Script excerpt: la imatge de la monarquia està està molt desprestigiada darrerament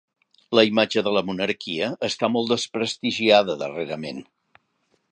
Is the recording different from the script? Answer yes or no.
yes